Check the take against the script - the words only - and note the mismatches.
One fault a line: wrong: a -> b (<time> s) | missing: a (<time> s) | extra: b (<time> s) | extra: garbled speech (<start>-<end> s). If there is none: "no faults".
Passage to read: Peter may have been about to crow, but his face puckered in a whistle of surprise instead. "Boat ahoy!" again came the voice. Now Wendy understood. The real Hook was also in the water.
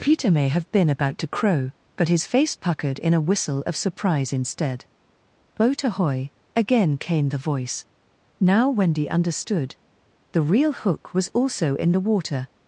no faults